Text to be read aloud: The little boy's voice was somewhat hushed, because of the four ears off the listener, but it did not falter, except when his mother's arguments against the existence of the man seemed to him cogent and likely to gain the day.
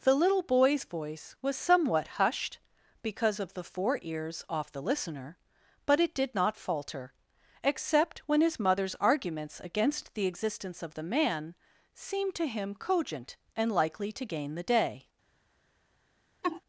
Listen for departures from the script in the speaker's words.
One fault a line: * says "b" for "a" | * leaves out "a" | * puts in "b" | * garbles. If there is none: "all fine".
all fine